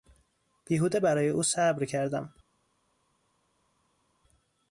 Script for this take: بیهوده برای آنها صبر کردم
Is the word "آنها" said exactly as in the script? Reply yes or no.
no